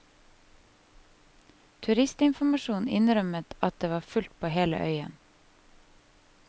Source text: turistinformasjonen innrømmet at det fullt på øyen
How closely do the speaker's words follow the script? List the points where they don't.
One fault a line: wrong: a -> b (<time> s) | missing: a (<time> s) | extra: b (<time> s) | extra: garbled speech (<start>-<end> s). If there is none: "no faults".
extra: var (3.9 s)
extra: hele (4.5 s)